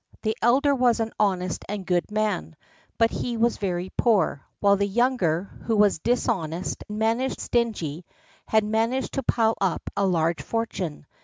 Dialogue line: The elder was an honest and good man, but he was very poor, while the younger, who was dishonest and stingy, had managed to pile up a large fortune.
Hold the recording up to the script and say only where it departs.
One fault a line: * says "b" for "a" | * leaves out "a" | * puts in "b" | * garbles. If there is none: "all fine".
* says "managed" for "and"